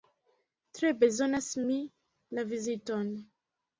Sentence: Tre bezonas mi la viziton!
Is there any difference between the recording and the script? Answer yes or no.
no